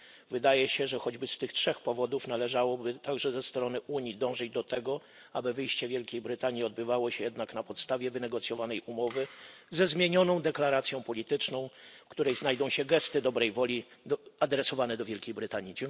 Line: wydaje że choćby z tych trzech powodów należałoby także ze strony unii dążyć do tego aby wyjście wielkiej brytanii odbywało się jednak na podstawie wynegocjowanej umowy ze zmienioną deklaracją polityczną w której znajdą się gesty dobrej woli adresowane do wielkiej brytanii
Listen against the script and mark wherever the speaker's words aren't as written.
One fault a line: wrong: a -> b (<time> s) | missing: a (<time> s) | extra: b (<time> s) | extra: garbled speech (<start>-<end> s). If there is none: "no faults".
extra: się (0.7 s)